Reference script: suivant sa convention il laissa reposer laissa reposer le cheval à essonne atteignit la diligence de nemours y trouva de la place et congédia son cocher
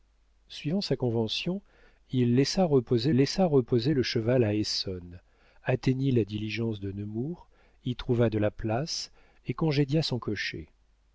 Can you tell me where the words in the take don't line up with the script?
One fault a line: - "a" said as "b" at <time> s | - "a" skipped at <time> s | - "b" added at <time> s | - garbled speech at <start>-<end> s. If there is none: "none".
none